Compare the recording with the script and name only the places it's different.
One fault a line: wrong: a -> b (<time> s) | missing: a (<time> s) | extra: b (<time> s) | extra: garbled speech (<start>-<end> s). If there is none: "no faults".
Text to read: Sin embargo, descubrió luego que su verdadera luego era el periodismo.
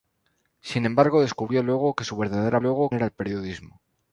no faults